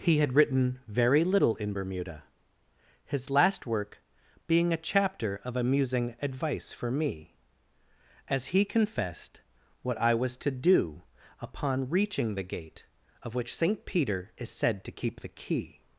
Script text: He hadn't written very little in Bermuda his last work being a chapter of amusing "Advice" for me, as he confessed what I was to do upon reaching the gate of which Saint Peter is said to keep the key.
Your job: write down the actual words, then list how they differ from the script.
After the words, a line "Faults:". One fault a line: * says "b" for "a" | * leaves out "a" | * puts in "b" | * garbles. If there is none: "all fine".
He had written very little in Bermuda his last work being a chapter of amusing "Advice" for me, as he confessed what I was to do upon reaching the gate of which Saint Peter is said to keep the key.
Faults:
* says "had" for "hadn't"